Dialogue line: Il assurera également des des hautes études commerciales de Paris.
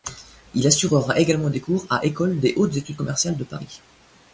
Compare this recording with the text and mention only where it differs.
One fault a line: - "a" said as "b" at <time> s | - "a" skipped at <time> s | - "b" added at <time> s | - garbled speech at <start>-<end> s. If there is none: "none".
- "cours à École" added at 1.6 s